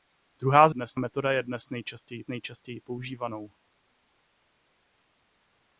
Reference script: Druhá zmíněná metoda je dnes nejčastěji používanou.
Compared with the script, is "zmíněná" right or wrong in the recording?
wrong